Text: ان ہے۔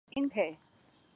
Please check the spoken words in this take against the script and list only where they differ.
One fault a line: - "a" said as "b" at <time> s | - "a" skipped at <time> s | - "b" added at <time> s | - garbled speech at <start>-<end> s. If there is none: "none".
none